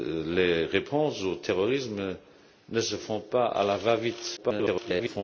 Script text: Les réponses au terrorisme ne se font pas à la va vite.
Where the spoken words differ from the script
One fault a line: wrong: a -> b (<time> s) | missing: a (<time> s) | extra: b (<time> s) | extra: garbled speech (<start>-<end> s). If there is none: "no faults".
extra: garbled speech (4.4-5.2 s)